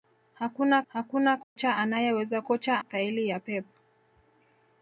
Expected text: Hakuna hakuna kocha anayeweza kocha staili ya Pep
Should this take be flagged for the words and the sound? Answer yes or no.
yes